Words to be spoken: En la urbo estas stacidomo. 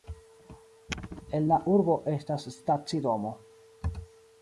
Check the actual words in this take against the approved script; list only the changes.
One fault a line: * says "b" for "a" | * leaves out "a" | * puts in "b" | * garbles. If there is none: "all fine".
all fine